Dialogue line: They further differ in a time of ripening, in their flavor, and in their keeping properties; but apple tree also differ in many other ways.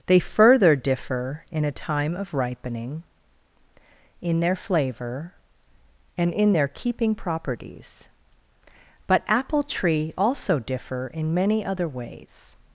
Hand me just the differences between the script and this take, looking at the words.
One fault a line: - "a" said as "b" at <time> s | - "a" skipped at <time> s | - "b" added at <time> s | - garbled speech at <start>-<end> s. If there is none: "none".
none